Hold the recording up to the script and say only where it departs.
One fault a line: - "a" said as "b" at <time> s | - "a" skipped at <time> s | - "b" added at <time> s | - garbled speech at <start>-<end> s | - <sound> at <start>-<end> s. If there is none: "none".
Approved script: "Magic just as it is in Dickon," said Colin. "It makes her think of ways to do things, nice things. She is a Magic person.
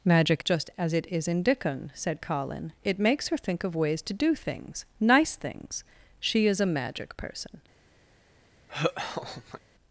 - laugh at 8.7-9.6 s